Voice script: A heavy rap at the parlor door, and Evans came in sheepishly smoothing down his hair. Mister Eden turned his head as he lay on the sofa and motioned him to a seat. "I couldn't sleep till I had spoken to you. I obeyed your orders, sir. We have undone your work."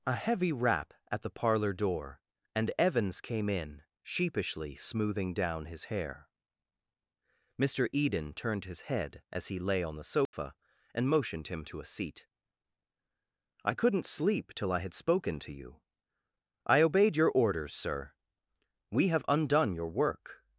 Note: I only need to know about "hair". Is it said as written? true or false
true